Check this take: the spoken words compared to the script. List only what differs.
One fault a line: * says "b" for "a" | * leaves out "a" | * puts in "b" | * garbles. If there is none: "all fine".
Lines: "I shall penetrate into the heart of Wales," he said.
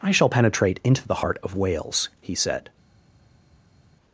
all fine